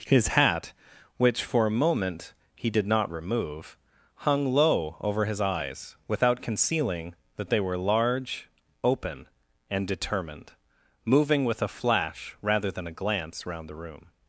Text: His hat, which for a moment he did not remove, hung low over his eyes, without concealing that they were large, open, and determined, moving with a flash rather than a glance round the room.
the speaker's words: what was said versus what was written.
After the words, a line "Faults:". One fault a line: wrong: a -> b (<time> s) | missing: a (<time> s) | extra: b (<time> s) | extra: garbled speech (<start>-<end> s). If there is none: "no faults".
His hat, which for a moment he did not remove, hung low over his eyes, without concealing that they were large, open, and determined, moving with a flash rather than a glance round the room.
Faults:
no faults